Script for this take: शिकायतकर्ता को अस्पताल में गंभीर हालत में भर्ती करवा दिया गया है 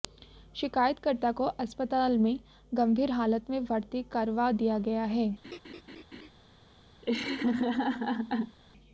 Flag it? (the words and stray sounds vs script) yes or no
yes